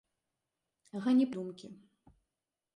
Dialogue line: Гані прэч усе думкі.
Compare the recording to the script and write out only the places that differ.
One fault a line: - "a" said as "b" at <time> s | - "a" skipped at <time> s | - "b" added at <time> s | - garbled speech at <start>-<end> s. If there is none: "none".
- "прэч усе" skipped at 1.3 s